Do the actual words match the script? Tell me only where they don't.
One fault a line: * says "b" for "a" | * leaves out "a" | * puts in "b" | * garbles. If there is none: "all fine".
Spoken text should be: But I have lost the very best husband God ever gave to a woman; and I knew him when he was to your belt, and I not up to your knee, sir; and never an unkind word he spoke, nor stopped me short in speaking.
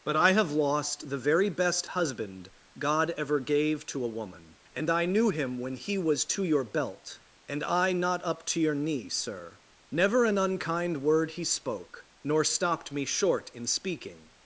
* leaves out "and"